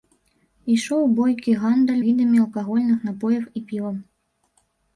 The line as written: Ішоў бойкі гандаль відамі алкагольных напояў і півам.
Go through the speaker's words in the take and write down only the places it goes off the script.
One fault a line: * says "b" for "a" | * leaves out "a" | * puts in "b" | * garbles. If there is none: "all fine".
all fine